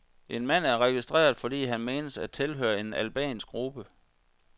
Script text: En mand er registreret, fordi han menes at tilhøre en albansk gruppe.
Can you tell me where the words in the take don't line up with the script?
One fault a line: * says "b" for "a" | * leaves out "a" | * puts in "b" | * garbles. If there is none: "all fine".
all fine